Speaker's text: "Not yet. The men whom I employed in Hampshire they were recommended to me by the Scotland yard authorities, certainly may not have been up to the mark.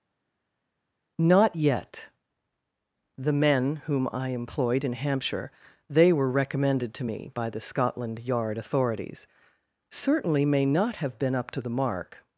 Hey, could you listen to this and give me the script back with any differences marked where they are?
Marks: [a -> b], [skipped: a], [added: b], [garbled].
"Not yet. The men whom I employed in Hampshire they were recommended to me by the Scotland yard authorities, certainly may not have been up to the mark.